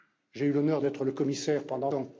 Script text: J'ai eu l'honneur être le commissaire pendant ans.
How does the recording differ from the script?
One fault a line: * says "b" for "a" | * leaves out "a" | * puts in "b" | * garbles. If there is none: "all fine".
all fine